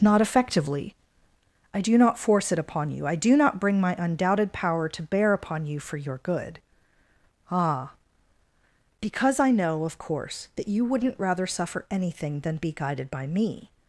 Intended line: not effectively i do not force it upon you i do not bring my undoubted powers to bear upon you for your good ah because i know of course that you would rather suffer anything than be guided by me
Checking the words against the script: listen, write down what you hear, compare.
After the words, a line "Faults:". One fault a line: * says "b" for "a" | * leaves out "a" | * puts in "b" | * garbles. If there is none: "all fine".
not effectively i do not force it upon you i do not bring my undoubted power to bear upon you for your good ah because i know of course that you wouldn't rather suffer anything than be guided by me
Faults:
* says "power" for "powers"
* says "wouldn't" for "would"